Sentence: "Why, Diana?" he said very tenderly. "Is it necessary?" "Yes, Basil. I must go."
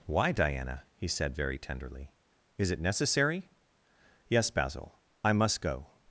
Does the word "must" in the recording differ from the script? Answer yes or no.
no